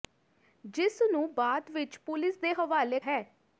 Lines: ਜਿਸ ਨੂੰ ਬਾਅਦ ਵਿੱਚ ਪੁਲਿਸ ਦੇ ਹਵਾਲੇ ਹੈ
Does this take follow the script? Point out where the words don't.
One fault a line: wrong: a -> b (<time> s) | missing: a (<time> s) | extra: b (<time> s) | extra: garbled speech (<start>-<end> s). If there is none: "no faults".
no faults